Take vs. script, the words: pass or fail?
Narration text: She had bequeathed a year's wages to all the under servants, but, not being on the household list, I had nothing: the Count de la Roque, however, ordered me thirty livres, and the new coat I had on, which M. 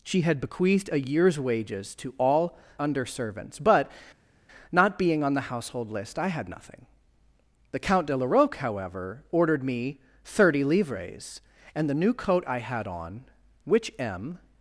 fail